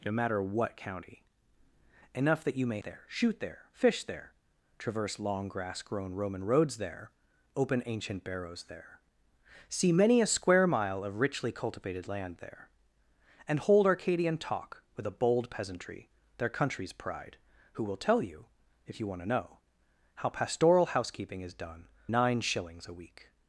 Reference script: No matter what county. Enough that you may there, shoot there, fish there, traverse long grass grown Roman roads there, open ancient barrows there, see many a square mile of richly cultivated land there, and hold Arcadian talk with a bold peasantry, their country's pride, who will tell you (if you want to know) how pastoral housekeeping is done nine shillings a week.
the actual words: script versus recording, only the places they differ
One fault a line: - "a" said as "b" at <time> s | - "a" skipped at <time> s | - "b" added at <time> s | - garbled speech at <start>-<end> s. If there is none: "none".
none